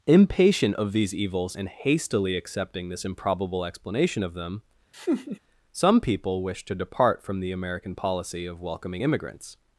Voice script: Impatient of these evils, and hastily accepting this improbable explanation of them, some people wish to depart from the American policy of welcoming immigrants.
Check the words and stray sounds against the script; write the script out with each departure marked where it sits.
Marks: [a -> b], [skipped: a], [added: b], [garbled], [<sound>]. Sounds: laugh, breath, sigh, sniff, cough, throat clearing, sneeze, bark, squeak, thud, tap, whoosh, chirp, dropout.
Impatient of these evils, and hastily accepting this improbable explanation of them, [laugh] some people wish to depart from the American policy of welcoming immigrants.